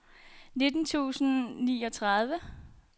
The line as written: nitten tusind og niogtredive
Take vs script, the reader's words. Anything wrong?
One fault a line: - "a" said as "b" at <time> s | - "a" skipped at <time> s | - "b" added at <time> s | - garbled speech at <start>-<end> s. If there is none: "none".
none